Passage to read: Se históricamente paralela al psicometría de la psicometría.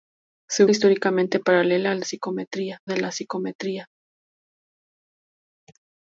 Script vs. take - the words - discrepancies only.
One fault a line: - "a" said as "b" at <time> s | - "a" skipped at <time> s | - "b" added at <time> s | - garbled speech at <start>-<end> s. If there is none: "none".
none